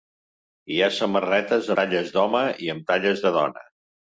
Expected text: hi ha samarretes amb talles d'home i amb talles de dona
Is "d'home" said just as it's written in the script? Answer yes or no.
yes